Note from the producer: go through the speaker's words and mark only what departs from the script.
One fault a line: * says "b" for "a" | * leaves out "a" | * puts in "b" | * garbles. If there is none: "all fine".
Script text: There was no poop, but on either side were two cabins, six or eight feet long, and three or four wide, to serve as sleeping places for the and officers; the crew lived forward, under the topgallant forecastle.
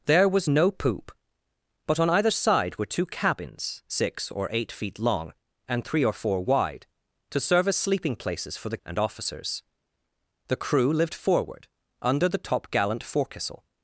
all fine